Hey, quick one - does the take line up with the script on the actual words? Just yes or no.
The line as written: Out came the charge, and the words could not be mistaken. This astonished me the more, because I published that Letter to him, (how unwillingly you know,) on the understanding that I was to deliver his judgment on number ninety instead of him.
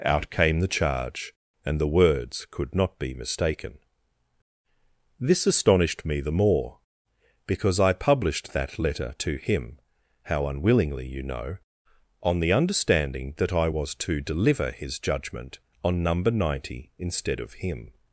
yes